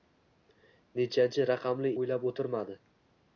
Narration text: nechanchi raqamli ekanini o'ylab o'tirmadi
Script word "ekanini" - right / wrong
wrong